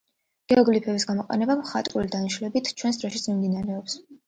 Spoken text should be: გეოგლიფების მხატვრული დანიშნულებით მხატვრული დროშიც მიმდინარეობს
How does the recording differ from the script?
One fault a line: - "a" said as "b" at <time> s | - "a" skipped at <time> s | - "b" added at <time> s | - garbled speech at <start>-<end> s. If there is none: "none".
- "გამოყენება" added at 1.1 s
- "მხატვრული" said as "ჩვენს" at 2.8 s